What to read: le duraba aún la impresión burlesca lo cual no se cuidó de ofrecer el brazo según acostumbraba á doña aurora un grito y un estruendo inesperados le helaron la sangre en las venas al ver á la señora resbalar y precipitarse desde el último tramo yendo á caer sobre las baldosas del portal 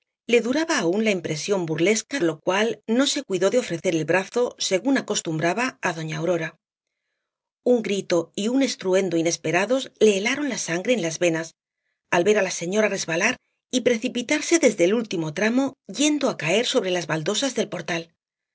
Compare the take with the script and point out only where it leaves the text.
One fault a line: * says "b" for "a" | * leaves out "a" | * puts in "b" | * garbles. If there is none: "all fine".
all fine